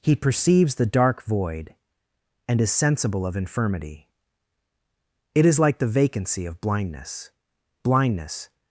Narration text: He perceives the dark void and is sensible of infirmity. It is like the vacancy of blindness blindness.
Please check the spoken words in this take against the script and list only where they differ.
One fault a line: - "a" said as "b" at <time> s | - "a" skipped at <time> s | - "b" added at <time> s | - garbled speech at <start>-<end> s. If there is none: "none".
none